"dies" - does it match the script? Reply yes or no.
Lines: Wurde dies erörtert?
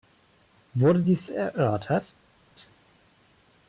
yes